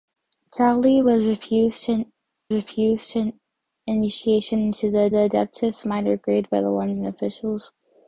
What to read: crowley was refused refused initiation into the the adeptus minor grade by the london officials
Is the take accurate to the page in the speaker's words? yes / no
yes